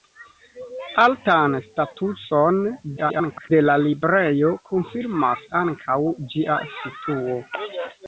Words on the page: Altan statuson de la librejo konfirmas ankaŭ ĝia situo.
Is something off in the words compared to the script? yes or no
yes